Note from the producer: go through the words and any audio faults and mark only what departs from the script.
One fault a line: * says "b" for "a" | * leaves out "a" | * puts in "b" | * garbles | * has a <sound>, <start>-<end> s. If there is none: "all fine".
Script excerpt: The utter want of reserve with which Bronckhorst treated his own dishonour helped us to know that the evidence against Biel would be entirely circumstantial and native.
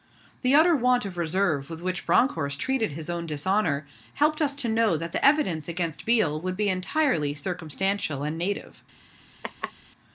* has a laugh, 9.4-9.7 s